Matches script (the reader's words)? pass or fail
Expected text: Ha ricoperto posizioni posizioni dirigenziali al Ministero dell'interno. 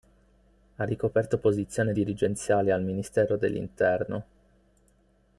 fail